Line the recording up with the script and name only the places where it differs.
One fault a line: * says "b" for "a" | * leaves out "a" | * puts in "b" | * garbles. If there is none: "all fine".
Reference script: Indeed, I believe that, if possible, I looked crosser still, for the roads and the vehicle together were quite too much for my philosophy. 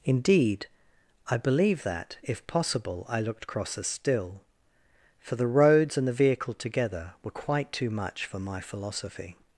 all fine